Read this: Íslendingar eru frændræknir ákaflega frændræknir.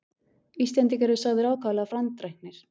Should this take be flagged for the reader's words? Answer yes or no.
yes